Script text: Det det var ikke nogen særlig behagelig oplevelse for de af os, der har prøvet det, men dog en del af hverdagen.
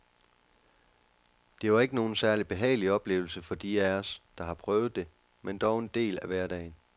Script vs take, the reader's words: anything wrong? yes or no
yes